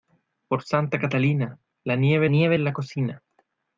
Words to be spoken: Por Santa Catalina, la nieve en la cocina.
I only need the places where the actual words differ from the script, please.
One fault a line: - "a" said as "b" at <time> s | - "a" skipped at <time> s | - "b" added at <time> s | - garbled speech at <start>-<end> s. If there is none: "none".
- "nieve" added at 2.3 s